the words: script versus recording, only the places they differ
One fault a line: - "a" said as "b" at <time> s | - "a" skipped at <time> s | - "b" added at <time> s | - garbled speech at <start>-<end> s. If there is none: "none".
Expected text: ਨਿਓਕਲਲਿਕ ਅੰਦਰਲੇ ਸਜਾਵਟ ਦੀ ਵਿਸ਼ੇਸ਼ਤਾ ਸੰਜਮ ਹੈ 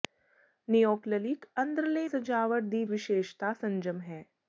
none